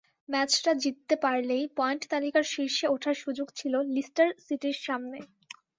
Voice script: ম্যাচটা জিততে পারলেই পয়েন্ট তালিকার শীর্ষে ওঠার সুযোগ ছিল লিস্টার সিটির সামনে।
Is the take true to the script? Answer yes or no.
yes